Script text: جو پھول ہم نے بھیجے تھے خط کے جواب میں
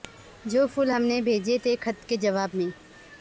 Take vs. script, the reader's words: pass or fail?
pass